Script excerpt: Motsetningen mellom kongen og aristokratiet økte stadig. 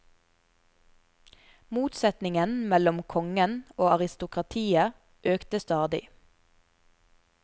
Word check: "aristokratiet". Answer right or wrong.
right